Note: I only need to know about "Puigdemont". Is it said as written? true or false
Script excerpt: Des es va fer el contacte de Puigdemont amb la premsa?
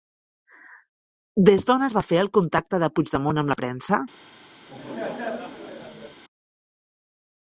true